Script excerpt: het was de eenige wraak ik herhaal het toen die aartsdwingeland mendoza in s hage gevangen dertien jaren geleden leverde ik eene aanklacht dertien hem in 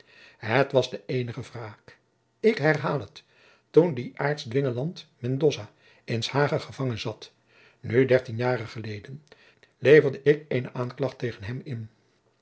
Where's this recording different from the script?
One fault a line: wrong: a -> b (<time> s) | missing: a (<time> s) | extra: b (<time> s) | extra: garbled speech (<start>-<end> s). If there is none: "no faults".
extra: zat nu (7.0 s)
wrong: dertien -> tegen (11.2 s)